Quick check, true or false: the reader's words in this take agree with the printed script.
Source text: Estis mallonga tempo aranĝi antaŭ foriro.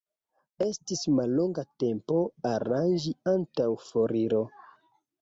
true